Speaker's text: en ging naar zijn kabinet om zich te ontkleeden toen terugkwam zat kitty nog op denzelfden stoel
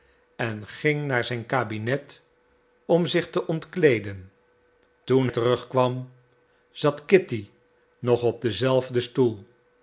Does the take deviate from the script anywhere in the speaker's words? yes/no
no